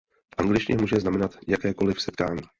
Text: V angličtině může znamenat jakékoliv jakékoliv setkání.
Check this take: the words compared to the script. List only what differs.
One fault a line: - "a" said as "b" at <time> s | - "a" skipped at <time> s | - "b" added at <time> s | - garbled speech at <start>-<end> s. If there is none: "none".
- "jakékoliv" skipped at 2.0 s